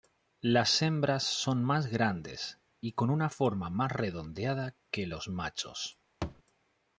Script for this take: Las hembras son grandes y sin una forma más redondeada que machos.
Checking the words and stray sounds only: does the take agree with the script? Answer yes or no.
no